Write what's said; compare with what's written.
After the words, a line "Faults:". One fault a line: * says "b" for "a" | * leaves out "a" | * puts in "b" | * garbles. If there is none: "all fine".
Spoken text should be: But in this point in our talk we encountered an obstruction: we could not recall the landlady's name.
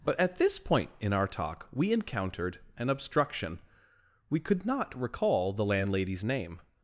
But at this point in our talk we encountered an obstruction: we could not recall the landlady's name.
Faults:
* says "at" for "in"